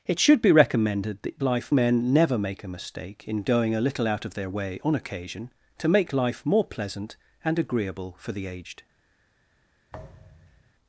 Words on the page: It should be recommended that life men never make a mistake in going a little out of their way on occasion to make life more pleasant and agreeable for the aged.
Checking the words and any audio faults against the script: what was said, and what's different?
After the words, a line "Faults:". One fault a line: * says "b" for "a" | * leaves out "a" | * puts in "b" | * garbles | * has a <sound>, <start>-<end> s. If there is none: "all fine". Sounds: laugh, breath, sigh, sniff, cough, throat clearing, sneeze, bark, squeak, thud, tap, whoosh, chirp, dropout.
It should be recommended that life men never make a mistake in going a little out of their way on occasion to make life more pleasant and agreeable for the aged.
Faults:
* has a thud, 9.9-10.7 s